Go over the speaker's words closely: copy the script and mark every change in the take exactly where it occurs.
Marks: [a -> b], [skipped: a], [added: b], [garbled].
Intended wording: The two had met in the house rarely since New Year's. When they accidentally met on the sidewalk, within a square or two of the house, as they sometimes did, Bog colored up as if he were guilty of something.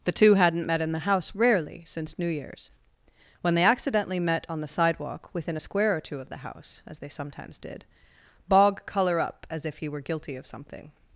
The two [had -> hadn't] met in the house rarely since New Year's. When they accidentally met on the sidewalk, within a square or two of the house, as they sometimes did, Bog [colored -> color] up as if he were guilty of something.